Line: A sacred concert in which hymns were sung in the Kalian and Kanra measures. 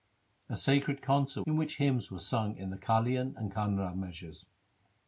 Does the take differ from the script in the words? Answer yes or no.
no